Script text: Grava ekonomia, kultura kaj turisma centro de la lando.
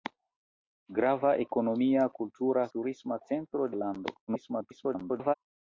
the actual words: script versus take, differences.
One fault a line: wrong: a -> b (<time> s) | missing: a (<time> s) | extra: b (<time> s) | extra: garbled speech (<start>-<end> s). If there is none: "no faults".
missing: kaj (2.7 s)
missing: de (3.7 s)
extra: garbled speech (4.3-5.3 s)